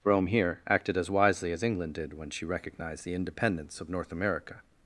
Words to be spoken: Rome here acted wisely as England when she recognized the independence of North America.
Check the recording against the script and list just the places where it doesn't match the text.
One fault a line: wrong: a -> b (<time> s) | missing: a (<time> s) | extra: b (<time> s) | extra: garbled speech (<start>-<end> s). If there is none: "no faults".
extra: as (1.0 s)
extra: did (1.9 s)